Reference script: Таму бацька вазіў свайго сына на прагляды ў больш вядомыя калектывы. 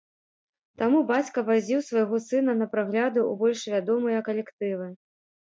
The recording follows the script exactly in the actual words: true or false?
true